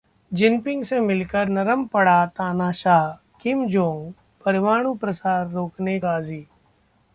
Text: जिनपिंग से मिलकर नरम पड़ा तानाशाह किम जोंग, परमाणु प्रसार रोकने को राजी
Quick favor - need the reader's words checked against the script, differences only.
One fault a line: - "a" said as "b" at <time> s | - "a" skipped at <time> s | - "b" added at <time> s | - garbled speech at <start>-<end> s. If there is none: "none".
- "को" skipped at 6.0 s